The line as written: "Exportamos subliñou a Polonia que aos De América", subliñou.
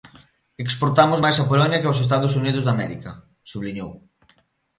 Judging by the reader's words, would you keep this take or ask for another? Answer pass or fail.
fail